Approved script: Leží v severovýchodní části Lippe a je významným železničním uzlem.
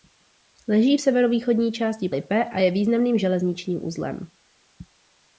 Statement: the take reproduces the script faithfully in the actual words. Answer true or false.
true